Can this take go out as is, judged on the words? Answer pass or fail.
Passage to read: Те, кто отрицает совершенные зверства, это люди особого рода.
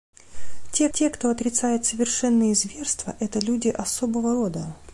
fail